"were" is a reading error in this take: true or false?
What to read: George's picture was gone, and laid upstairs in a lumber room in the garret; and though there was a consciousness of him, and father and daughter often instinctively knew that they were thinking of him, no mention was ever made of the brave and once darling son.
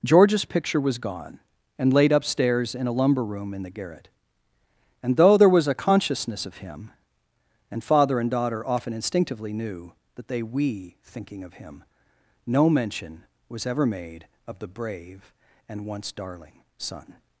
true